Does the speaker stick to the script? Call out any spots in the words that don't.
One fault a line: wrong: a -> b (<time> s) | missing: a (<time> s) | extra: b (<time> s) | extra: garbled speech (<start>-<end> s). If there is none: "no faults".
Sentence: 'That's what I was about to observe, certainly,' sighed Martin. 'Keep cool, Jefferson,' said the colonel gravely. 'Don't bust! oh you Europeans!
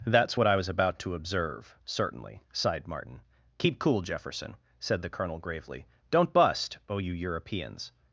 no faults